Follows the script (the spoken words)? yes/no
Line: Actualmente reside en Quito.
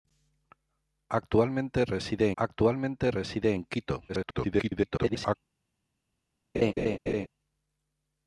no